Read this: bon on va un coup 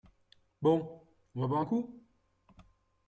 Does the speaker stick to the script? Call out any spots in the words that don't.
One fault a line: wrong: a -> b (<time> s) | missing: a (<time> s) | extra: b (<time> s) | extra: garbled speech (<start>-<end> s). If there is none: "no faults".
extra: boire (1.5 s)